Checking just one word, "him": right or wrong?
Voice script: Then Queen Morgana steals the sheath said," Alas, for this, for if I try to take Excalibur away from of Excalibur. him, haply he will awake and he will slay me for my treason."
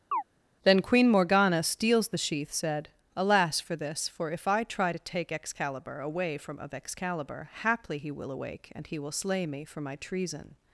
wrong